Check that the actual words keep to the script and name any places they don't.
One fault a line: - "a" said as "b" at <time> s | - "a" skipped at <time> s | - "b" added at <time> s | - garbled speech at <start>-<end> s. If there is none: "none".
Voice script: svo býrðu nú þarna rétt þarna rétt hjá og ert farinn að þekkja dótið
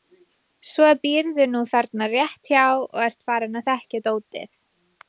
- "þarna rétt" skipped at 2.5 s